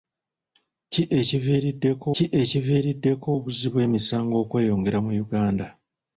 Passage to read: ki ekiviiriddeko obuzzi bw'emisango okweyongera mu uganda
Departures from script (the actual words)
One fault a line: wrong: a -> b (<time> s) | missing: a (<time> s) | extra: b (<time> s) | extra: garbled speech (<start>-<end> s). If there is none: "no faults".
extra: ki ekiviiriddeko (2.1 s)